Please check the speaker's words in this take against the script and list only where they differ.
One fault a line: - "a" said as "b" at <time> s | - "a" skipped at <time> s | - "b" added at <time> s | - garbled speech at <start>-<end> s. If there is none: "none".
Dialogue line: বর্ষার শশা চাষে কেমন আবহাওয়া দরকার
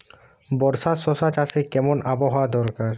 none